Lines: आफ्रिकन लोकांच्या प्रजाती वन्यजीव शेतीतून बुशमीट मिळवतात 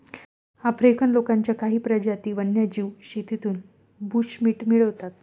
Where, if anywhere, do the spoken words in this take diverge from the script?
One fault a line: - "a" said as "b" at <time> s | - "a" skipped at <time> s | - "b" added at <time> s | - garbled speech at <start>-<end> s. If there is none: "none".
- "काही" added at 1.6 s